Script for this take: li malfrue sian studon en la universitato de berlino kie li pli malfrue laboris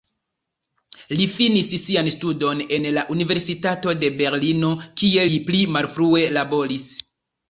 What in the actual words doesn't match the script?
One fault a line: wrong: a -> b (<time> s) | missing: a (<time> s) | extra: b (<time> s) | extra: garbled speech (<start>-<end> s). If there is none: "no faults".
wrong: malfrue -> finis (1.3 s)